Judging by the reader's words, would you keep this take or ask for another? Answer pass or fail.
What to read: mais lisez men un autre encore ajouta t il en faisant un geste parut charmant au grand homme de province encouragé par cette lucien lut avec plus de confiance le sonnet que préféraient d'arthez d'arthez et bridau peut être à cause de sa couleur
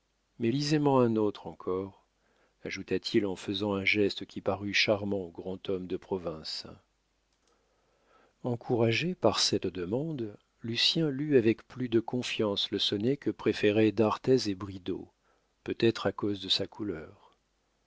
fail